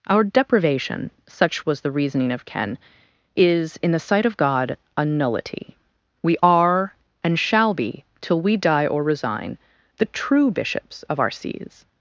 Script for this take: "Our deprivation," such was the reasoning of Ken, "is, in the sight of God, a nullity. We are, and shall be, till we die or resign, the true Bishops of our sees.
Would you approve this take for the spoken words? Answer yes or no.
yes